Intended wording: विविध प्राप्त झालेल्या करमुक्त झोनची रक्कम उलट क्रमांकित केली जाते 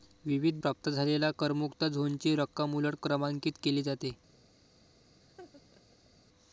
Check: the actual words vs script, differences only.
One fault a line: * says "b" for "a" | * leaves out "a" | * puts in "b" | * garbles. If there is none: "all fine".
all fine